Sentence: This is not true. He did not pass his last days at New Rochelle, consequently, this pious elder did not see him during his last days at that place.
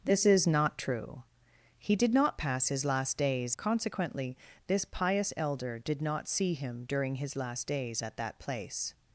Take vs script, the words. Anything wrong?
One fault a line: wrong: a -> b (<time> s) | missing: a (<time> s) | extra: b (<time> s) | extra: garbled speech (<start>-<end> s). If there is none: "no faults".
missing: at New Rochelle (3.5 s)